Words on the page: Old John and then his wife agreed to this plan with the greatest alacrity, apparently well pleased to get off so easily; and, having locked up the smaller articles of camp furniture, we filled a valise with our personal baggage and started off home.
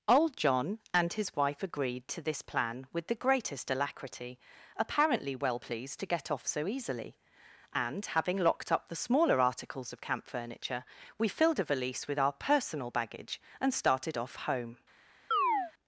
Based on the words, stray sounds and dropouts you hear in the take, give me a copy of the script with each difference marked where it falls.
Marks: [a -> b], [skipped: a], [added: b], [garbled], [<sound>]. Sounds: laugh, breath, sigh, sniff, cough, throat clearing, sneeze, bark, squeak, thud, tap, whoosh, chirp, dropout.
Old John and [skipped: then] his wife agreed to this plan with the greatest alacrity, apparently well pleased to get off so easily; and, having locked up the smaller articles of camp furniture, we filled a valise with our personal baggage and started off home. [chirp]